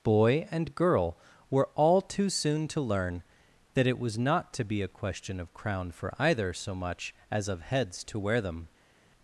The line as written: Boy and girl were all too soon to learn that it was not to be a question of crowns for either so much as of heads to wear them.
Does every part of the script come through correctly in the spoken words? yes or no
no